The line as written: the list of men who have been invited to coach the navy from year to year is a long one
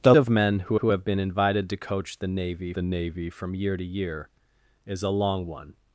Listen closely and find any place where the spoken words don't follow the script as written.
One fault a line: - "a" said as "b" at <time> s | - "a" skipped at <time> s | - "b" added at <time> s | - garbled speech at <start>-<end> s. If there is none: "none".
- "list" skipped at 0.1 s
- "who" added at 0.7 s
- "the navy" added at 2.7 s